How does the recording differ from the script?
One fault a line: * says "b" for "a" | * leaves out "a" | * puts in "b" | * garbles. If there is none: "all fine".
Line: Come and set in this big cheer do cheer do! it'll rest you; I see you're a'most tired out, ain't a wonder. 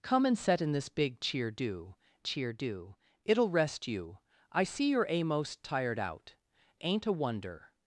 all fine